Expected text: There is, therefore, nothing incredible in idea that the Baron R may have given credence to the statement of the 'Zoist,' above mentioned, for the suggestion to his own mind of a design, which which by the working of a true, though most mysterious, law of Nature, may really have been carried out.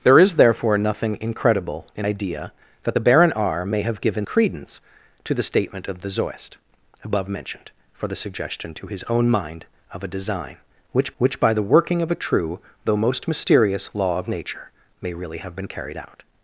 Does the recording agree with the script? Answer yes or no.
yes